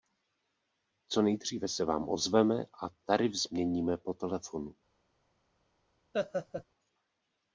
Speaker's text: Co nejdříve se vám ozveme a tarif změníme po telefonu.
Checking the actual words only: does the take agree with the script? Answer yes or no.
yes